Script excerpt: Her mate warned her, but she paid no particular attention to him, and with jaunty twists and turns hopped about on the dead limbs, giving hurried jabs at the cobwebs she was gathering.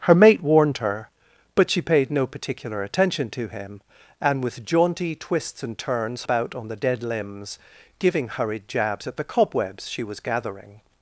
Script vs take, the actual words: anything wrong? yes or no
yes